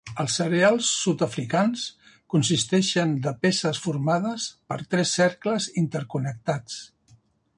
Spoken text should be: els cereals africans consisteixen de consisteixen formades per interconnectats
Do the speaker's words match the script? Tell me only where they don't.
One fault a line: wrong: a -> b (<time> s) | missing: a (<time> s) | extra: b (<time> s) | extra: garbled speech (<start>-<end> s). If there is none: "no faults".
extra: sud (1.0 s)
wrong: consisteixen -> peces (3.5 s)
extra: tres cercles (5.0 s)